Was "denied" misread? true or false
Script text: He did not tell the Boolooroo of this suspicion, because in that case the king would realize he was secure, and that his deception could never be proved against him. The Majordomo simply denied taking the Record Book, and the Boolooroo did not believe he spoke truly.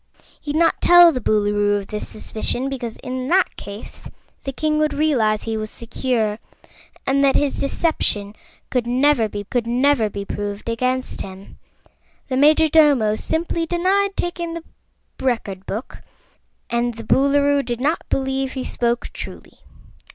false